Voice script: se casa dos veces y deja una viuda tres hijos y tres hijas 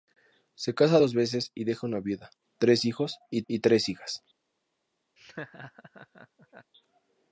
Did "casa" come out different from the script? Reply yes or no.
no